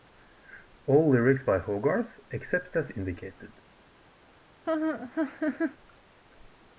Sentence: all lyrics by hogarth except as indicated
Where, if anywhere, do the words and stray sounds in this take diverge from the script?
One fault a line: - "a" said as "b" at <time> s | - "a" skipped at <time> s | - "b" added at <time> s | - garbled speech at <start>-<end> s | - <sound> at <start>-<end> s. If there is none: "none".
- laugh at 4.7-5.8 s